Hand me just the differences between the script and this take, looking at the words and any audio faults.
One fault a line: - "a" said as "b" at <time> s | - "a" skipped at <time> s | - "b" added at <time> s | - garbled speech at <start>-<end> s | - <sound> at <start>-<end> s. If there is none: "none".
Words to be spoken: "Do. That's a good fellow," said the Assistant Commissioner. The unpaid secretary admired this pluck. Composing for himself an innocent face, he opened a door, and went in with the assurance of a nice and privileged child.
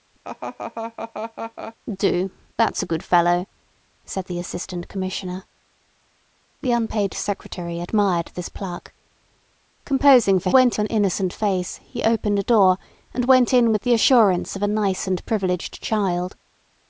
- laugh at 0.2-1.8 s
- "himself" said as "went" at 10.5 s